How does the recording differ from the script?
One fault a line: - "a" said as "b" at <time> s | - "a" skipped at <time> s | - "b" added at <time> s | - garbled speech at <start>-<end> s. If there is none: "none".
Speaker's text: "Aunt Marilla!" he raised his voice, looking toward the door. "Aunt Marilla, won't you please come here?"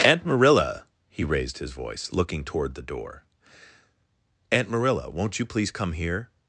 none